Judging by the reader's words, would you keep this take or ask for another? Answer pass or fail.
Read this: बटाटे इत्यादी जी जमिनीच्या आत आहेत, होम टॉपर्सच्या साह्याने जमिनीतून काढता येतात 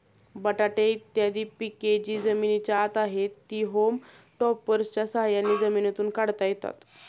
fail